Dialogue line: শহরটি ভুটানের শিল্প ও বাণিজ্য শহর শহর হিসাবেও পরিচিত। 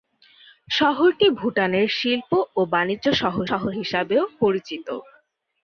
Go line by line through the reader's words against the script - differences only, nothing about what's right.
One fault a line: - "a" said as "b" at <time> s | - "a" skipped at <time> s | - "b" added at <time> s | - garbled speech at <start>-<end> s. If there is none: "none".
none